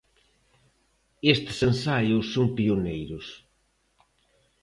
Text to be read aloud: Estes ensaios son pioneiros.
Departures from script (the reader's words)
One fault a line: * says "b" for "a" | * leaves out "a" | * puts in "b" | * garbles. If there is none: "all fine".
all fine